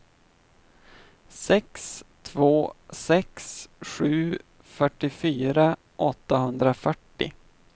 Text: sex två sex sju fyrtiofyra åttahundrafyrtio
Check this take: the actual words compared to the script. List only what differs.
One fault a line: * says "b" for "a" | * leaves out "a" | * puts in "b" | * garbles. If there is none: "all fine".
all fine